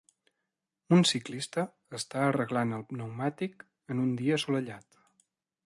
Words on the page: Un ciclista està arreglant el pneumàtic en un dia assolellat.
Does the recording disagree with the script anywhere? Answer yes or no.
no